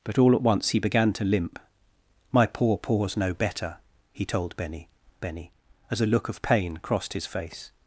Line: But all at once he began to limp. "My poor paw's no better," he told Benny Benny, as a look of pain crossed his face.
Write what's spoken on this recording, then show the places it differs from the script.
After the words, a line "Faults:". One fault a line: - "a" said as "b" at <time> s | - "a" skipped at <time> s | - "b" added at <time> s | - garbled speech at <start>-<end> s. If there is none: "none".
But all at once he began to limp. "My poor paw's no better," he told Benny Benny, as a look of pain crossed his face.
Faults:
none